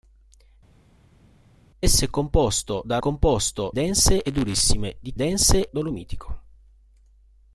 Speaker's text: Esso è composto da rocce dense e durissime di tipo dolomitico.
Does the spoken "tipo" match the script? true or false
false